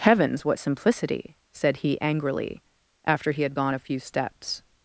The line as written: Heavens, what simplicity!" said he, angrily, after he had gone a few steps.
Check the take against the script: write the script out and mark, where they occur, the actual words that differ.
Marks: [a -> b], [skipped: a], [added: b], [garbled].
Heavens, what simplicity!" said he, angrily, after he had gone a few steps.